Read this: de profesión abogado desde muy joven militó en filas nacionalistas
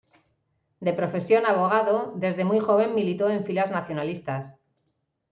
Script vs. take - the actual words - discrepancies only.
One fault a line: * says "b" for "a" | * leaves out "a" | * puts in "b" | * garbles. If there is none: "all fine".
all fine